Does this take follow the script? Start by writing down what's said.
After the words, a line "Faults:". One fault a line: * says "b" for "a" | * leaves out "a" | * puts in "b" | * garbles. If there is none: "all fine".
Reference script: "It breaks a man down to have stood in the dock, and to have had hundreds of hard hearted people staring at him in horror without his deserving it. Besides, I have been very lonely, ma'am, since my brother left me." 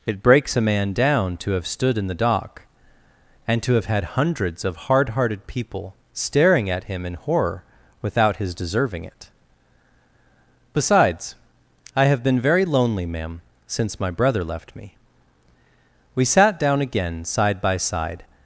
"It breaks a man down to have stood in the dock, and to have had hundreds of hard hearted people staring at him in horror without his deserving it. Besides, I have been very lonely, ma'am, since my brother left me." We sat down again, side by side
Faults:
* puts in "We sat down again side by side"